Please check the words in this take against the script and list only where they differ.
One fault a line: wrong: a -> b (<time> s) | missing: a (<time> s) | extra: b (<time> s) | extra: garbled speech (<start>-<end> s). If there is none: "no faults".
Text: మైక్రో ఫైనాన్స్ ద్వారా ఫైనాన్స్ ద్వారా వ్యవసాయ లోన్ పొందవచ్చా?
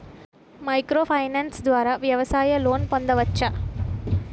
missing: ఫైనాన్స్ ద్వారా (1.9 s)